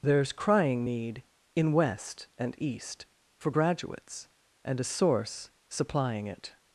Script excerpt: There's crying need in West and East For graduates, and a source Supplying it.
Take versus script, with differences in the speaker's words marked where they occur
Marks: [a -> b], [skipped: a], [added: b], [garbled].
There's crying need in West and East For graduates, and a source Supplying it.